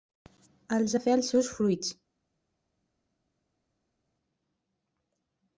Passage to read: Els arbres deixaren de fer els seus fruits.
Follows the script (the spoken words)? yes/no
no